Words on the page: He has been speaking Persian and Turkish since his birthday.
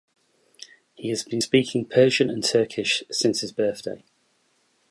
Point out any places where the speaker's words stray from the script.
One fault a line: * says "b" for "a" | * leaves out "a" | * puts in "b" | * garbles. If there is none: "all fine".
all fine